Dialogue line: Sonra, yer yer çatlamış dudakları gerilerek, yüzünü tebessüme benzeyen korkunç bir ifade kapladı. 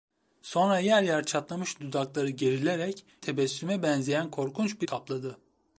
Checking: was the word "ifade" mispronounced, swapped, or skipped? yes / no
yes